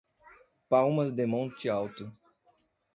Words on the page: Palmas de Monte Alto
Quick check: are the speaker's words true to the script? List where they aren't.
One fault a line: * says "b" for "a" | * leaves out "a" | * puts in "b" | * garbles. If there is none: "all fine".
all fine